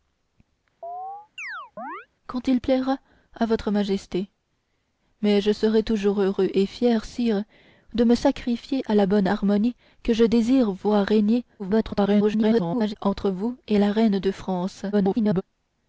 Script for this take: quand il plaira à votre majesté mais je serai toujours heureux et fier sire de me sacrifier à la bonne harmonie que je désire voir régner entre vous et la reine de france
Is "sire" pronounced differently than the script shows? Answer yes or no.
no